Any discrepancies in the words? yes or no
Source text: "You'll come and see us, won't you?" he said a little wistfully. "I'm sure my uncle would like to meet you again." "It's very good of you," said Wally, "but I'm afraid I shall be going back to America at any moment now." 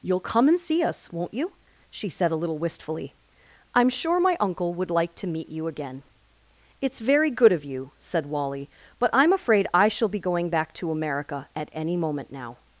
yes